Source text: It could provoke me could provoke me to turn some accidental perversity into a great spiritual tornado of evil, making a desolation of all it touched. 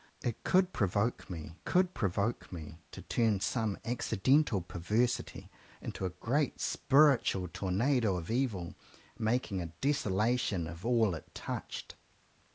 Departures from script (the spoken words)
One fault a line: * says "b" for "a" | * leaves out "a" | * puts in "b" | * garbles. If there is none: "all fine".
all fine